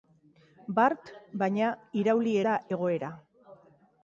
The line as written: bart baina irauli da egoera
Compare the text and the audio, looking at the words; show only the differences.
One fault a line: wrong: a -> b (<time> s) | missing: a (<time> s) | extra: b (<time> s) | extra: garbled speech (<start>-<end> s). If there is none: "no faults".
no faults